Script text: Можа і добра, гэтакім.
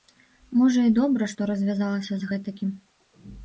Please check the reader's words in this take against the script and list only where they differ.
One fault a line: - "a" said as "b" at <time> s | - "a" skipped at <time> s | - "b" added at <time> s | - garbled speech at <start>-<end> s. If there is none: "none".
- "што развязалася з" added at 1.3 s